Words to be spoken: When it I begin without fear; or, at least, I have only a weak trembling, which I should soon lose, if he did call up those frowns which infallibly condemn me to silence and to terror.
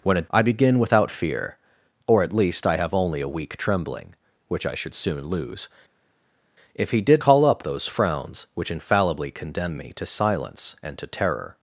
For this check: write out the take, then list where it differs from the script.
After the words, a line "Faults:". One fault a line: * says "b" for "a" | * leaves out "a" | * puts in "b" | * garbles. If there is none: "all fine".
When it I begin without fear; or, at least, I have only a weak trembling, which I should soon lose, if he did call up those frowns which infallibly condemn me to silence and to terror.
Faults:
all fine